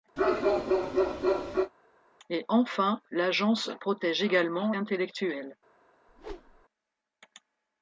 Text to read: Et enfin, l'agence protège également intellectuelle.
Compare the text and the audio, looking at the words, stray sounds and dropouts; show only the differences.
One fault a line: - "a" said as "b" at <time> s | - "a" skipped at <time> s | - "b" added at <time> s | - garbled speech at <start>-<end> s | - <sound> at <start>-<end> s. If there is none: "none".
- bark at 0.2-1.7 s
- whoosh at 6.1-6.7 s